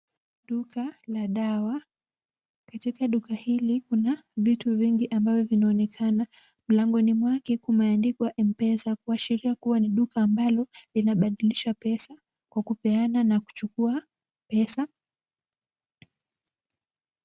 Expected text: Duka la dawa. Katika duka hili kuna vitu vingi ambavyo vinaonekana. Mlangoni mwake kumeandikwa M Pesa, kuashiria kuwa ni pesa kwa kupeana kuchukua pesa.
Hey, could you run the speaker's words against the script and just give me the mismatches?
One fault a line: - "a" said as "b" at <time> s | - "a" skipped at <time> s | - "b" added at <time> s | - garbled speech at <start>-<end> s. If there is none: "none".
- "duka ambalo linabadilisha" added at 9.9 s
- "na" added at 13.2 s